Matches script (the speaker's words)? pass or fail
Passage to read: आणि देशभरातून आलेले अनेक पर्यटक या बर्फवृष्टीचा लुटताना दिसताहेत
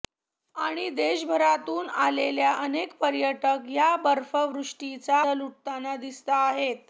pass